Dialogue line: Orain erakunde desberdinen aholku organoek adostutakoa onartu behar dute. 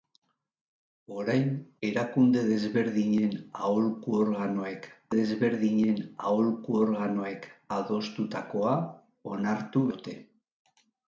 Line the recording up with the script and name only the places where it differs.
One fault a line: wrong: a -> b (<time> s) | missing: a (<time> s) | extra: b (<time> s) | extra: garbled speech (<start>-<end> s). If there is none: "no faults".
extra: desberdinen aholku organoek (5.1 s)
missing: behar (9.9 s)